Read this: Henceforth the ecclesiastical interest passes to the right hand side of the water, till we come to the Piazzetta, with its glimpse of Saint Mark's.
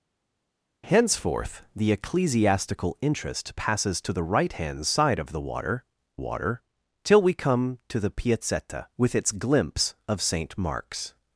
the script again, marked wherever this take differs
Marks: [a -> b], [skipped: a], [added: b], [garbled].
Henceforth the ecclesiastical interest passes to the right hand side of the water, [added: water] till we come to the Piazzetta, with its glimpse of Saint Mark's.